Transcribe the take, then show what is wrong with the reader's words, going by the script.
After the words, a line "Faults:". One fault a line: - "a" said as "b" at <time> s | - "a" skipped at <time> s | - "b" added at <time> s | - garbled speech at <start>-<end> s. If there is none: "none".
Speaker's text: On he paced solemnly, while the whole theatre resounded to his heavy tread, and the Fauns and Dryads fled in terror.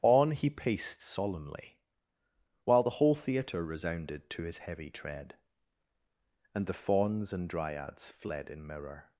On he paced solemnly, while the whole theatre resounded to his heavy tread, and the Fauns and Dryads fled in mirror.
Faults:
- "terror" said as "mirror" at 8.7 s